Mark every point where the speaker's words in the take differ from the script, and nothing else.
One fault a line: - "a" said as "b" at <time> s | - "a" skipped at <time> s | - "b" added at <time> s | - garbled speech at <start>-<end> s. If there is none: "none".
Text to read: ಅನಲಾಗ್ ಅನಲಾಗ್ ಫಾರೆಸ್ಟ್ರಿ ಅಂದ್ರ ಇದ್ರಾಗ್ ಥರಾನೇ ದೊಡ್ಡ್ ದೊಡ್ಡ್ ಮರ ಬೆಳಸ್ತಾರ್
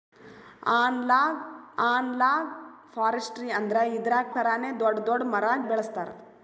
none